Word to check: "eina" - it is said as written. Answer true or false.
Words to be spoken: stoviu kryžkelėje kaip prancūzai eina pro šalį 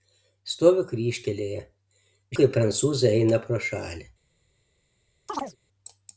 true